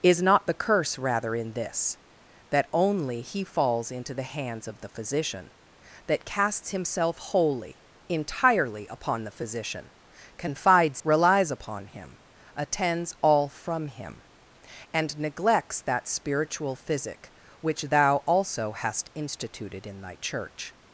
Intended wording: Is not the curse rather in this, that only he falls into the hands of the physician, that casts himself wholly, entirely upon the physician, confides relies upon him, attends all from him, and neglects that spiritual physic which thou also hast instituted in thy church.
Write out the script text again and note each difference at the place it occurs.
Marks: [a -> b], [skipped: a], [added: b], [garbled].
Is not the curse rather in this, that only he falls into the hands of the physician, that casts himself wholly, entirely upon the physician, confides relies upon him, attends all from him, and neglects that spiritual physic which thou also hast instituted in thy church.